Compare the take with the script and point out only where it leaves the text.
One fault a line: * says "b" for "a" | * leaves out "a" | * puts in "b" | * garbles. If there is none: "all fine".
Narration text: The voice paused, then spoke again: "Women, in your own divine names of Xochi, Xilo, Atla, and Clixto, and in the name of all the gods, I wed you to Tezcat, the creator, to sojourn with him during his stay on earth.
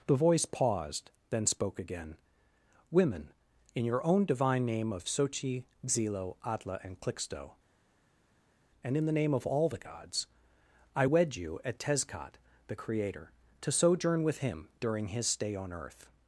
* says "name" for "names"
* says "at" for "to"